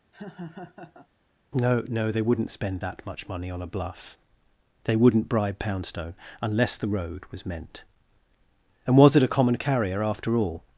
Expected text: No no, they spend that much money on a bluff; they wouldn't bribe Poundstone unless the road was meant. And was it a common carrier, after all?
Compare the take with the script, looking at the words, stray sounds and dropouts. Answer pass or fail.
fail